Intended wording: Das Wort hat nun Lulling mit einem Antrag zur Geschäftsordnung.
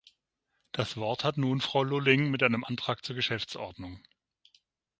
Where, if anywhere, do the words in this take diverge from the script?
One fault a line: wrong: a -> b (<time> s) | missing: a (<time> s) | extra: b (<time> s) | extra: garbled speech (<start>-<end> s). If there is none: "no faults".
extra: Frau (1.6 s)